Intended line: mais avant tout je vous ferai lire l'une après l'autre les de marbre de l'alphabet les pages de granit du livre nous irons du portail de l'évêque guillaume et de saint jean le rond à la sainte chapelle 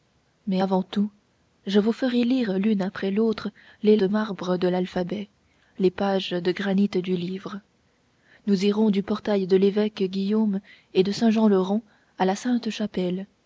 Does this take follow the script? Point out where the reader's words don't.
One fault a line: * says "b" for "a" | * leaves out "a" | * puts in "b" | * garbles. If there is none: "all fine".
all fine